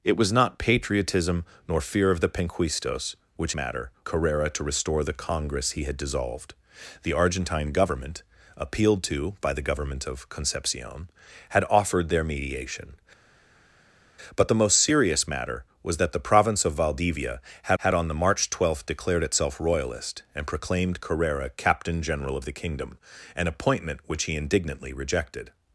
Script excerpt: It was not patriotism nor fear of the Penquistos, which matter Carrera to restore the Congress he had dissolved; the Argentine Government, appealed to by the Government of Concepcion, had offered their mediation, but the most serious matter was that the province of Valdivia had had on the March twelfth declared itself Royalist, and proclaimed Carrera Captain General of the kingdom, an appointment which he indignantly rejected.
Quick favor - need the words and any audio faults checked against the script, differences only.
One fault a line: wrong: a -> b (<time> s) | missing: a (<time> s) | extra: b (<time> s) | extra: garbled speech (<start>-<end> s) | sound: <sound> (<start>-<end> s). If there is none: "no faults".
no faults